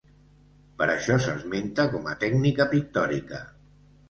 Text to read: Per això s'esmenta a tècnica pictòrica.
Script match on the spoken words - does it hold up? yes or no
no